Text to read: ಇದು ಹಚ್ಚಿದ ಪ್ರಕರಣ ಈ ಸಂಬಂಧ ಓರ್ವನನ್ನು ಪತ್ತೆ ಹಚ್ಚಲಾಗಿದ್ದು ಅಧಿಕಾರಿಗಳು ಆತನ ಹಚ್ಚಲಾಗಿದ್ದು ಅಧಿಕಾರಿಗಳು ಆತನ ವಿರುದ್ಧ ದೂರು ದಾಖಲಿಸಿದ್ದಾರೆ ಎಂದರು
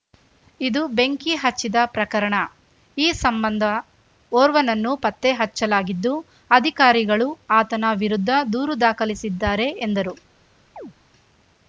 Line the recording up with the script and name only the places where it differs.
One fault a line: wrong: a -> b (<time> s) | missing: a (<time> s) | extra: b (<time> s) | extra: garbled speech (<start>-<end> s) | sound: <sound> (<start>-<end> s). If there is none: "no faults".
extra: ಬೆಂಕಿ (0.9 s)
missing: ಹಚ್ಚಲಾಗಿದ್ದು ಅಧಿಕಾರಿಗಳು ಆತನ (7.9 s)
sound: chirp (10.8-10.9 s)